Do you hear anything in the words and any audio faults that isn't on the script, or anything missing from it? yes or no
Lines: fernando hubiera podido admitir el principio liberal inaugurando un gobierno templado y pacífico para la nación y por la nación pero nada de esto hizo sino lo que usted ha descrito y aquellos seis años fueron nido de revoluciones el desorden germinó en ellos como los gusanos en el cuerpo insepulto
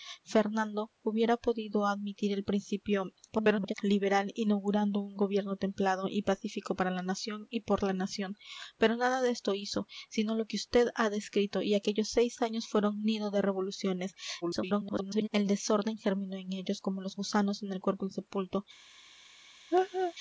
yes